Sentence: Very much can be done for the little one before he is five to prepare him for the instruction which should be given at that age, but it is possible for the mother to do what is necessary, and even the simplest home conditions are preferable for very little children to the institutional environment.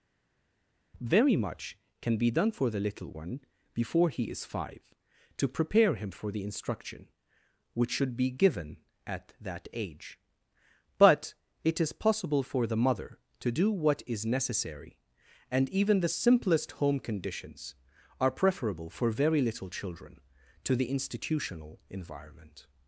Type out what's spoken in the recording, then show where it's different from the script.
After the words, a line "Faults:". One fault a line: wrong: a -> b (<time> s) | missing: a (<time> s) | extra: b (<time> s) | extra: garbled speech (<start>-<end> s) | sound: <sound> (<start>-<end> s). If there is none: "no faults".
Very much can be done for the little one before he is five to prepare him for the instruction which should be given at that age, but it is possible for the mother to do what is necessary, and even the simplest home conditions are preferable for very little children to the institutional environment.
Faults:
no faults